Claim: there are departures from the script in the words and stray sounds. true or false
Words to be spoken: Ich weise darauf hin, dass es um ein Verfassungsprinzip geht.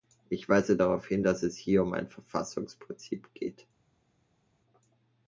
true